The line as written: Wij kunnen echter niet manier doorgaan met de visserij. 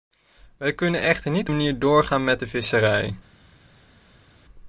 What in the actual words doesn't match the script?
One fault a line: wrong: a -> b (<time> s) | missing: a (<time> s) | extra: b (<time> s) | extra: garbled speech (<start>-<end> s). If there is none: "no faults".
no faults